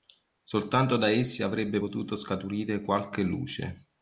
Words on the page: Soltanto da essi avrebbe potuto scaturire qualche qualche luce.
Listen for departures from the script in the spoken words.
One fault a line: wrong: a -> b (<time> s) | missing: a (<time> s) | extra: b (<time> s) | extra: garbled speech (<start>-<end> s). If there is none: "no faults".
missing: qualche (3.2 s)